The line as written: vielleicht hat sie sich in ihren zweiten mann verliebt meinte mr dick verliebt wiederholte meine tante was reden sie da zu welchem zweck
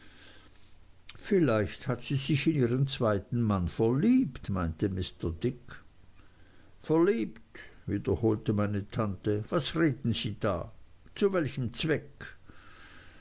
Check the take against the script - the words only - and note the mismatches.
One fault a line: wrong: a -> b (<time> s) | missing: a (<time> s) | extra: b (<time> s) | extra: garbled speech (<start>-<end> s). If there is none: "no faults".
no faults